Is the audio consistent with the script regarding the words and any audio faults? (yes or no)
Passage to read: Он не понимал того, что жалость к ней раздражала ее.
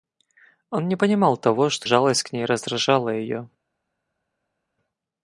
yes